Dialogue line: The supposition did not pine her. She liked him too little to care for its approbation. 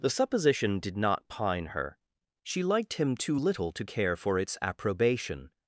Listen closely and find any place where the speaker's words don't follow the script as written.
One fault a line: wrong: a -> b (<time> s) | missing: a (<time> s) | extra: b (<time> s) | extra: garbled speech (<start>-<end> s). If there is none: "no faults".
no faults